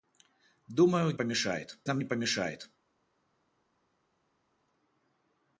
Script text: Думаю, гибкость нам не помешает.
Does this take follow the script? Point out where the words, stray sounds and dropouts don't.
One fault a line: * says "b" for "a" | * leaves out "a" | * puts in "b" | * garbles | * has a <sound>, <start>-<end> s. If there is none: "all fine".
* says "помешает" for "гибкость"